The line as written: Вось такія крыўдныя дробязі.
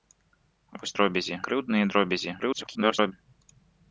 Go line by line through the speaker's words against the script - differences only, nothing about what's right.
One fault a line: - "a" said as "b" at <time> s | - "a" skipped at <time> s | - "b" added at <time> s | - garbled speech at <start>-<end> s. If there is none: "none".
- "такія" said as "дробязі" at 1.0 s
- garbled speech at 2.4-3.1 s